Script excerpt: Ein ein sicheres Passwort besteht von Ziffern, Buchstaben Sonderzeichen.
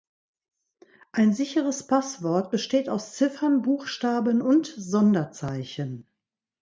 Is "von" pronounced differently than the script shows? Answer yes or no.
yes